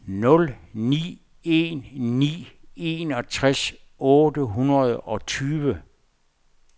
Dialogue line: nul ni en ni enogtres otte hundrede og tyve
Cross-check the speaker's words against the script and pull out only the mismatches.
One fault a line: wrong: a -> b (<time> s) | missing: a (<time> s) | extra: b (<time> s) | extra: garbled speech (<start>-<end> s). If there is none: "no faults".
no faults